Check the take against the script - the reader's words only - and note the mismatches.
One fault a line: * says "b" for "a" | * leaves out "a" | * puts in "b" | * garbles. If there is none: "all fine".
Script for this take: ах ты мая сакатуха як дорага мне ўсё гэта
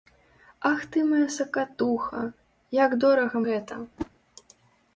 * leaves out "мне ўсё"